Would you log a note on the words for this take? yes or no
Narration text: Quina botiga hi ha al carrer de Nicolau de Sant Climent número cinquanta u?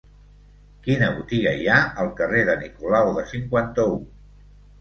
yes